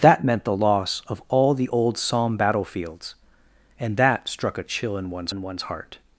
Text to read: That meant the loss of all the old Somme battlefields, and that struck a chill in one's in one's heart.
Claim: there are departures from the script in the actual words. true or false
false